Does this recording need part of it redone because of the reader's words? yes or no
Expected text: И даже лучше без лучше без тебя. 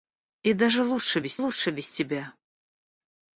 no